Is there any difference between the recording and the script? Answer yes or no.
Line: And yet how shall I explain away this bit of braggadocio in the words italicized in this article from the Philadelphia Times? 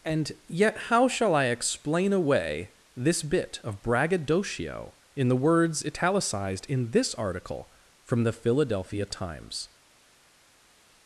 no